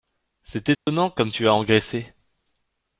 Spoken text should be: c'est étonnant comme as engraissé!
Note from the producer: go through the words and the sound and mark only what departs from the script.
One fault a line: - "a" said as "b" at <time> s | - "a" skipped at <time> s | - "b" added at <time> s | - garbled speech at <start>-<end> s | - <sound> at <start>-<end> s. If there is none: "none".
- dropout at 0.7-0.9 s
- "tu" added at 1.3 s